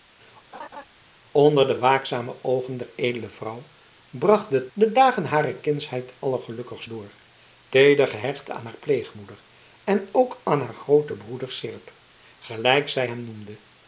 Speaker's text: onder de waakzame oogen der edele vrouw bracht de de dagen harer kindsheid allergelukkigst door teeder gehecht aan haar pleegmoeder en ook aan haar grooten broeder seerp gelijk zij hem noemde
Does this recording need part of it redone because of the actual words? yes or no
no